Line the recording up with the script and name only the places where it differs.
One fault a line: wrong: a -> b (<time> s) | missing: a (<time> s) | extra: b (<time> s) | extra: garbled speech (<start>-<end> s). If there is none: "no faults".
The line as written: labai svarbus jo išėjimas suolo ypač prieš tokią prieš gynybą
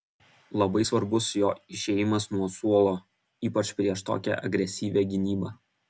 extra: nuo (2.3 s)
wrong: prieš -> agresyvią (4.5 s)